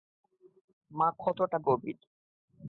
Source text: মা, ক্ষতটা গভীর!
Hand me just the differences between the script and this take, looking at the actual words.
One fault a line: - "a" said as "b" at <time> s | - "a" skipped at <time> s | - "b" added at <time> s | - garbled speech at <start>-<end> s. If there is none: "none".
none